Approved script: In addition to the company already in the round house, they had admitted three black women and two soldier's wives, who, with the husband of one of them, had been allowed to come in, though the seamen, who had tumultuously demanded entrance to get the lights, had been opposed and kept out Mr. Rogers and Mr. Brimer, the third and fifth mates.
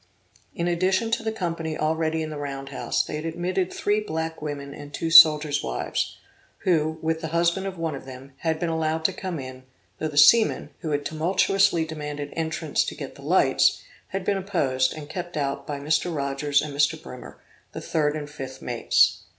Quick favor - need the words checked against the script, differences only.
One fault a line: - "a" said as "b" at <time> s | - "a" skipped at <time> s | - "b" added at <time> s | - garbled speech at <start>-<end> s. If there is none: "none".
- "by" added at 15.7 s